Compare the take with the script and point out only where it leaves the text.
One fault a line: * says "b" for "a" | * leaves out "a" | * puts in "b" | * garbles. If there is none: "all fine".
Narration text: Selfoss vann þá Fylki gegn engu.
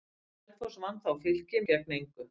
all fine